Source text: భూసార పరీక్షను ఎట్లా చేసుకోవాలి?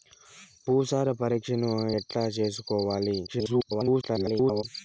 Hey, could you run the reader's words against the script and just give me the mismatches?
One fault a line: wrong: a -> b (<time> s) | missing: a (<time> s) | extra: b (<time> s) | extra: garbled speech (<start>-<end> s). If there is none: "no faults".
extra: garbled speech (3.3-4.6 s)